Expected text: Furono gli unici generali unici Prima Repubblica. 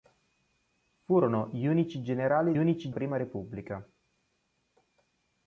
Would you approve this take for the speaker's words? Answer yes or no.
yes